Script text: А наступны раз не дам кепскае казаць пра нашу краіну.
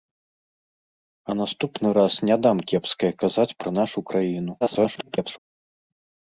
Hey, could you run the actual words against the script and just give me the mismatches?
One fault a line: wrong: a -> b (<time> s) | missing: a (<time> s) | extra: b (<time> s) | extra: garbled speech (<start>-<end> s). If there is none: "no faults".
extra: garbled speech (4.6-5.4 s)